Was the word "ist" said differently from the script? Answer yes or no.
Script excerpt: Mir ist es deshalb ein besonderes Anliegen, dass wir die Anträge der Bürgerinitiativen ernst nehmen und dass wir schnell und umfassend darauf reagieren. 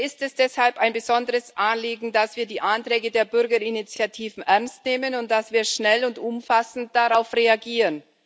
no